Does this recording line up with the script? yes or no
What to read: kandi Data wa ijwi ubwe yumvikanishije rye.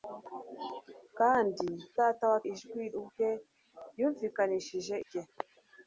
yes